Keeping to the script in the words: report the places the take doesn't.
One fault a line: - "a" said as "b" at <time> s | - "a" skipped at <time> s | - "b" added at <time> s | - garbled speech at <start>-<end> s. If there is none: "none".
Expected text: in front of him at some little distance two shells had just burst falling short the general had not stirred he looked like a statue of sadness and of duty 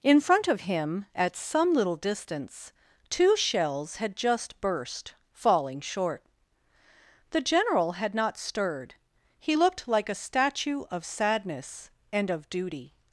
none